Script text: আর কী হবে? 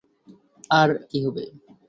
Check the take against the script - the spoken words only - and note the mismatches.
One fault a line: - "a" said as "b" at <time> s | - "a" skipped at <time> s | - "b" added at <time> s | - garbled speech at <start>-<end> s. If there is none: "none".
none